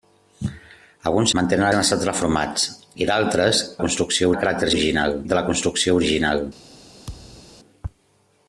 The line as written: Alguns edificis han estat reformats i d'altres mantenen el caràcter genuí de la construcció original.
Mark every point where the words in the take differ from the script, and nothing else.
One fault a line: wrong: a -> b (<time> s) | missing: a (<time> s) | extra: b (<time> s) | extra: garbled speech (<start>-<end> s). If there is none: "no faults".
wrong: edificis -> mantenen (1.4 s)
wrong: mantenen -> construcció (3.8 s)
wrong: genuí -> original (4.7 s)